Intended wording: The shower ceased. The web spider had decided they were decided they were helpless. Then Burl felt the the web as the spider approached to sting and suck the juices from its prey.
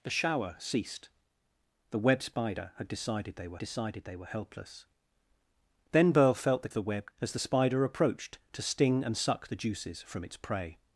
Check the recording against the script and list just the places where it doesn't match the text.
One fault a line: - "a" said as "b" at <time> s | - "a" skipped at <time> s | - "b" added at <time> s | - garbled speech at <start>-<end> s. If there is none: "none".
none